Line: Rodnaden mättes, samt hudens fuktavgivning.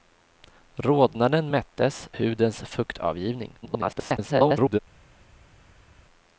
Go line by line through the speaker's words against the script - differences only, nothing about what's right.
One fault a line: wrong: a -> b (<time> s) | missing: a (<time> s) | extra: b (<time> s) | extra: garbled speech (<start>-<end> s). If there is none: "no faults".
missing: samt (2.1 s)
extra: garbled speech (3.6-4.8 s)